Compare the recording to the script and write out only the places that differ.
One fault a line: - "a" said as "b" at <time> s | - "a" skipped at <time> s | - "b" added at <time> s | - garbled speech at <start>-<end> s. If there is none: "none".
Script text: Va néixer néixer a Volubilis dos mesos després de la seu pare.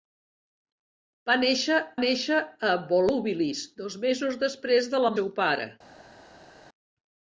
none